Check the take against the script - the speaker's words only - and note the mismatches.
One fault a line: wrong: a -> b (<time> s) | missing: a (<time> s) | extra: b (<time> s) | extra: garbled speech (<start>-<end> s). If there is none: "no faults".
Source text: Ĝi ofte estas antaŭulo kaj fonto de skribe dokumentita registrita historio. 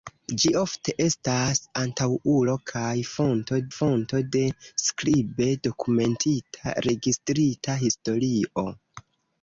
extra: fonto (3.7 s)